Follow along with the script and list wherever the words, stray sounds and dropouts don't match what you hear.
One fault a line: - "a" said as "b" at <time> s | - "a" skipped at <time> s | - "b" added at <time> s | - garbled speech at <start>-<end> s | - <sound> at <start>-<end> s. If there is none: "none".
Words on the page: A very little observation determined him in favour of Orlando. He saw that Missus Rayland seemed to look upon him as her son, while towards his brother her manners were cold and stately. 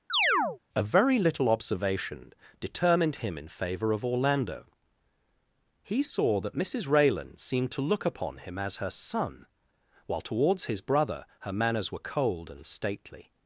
- chirp at 0.1-0.6 s